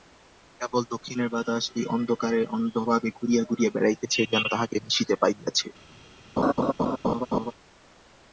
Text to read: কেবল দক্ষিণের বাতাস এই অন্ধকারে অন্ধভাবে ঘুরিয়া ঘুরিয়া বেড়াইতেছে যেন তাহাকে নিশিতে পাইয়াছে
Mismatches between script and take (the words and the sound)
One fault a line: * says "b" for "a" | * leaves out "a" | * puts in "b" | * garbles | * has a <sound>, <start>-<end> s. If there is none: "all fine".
* has a laugh, 6.4-7.5 s